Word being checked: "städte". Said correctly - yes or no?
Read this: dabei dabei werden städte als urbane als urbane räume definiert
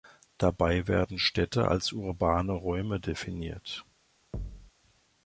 yes